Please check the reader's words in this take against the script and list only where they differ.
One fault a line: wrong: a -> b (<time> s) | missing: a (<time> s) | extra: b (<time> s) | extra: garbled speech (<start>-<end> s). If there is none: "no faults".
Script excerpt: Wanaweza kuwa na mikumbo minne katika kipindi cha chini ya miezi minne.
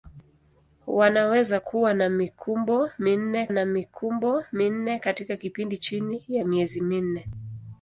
extra: na mikumbo minne (3.5 s)
missing: cha (5.8 s)